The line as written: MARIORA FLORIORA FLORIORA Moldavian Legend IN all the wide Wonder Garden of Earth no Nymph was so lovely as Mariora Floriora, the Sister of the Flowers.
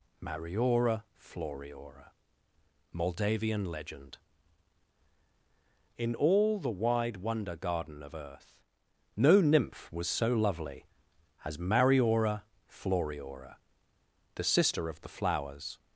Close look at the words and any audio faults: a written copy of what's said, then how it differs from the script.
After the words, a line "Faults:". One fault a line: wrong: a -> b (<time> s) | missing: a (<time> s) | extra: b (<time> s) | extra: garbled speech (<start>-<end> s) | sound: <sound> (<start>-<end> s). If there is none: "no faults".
MARIORA FLORIORA Moldavian Legend IN all the wide Wonder Garden of Earth no Nymph was so lovely as Mariora Floriora, the Sister of the Flowers.
Faults:
missing: FLORIORA (2.1 s)